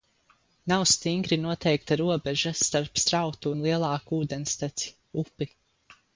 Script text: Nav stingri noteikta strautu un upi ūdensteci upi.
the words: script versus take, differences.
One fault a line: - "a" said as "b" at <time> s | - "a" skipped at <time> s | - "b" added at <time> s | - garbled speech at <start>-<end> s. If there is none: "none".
- "robeža starp" added at 2.0 s
- "upi" said as "lielāku" at 3.7 s